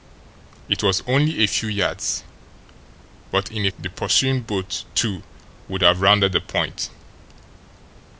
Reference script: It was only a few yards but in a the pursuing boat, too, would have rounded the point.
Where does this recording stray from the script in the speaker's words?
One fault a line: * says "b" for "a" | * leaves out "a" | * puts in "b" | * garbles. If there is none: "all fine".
all fine